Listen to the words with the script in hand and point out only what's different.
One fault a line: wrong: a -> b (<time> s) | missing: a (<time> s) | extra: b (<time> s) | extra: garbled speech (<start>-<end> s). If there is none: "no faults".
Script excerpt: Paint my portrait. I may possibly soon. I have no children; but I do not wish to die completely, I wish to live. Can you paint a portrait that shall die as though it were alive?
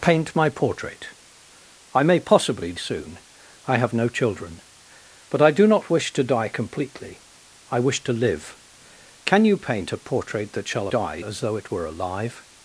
no faults